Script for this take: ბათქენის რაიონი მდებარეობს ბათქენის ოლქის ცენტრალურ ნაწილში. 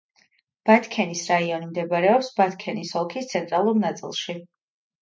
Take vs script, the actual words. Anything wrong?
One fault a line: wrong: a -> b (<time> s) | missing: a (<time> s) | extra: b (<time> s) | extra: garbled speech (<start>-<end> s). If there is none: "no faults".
no faults